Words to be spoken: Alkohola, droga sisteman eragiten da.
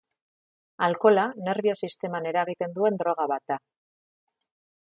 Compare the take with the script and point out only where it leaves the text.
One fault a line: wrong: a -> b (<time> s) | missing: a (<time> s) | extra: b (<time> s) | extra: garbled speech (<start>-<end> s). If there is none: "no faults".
wrong: droga -> nerbio (1.5 s)
extra: duen droga bat (2.8 s)